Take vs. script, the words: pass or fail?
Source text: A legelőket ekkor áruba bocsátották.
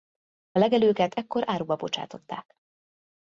pass